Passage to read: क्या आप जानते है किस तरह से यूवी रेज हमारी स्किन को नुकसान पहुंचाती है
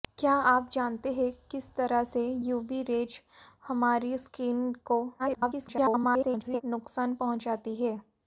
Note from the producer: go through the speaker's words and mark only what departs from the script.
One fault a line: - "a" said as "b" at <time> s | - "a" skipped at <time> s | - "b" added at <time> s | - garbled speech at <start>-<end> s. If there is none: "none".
- garbled speech at 5.2-6.6 s